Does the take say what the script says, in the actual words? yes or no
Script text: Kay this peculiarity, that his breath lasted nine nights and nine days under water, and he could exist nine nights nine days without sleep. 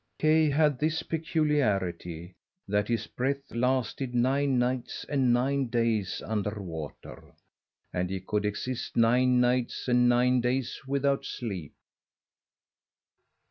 no